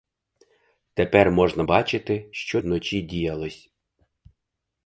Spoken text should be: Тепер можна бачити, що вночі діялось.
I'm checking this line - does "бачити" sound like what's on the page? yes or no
yes